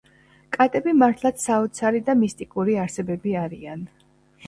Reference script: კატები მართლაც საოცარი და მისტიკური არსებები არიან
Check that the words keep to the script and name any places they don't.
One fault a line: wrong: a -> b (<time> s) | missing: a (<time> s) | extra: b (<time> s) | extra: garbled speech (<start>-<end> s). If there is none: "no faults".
no faults